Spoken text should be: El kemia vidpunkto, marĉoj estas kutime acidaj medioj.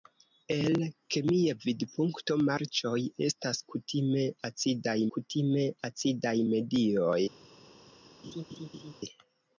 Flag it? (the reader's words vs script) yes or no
yes